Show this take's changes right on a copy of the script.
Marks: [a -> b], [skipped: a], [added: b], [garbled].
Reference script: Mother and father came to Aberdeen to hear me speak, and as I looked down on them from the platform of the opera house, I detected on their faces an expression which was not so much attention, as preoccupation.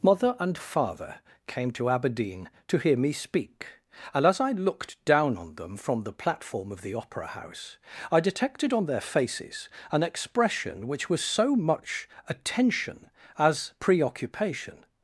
Mother and father came to Aberdeen to hear me speak, and as I looked down on them from the platform of the opera house, I detected on their faces an expression which was [skipped: not] so much attention, as preoccupation.